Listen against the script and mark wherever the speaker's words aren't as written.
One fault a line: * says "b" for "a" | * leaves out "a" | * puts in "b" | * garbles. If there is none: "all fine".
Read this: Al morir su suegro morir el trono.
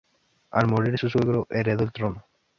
* says "heredó" for "morir"